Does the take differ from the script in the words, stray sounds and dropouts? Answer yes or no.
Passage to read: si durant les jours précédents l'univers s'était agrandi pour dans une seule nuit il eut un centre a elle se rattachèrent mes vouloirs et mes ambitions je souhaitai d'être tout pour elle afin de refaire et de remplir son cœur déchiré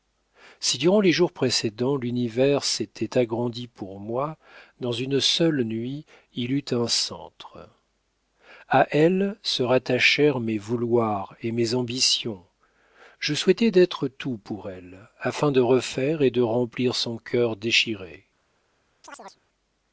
yes